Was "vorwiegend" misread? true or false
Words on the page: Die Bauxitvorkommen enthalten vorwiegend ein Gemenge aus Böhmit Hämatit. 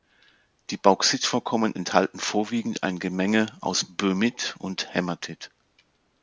false